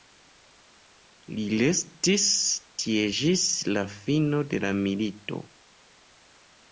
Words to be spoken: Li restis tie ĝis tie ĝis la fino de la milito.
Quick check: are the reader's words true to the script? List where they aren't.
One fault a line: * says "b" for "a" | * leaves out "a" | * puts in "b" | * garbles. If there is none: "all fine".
* leaves out "tie ĝis"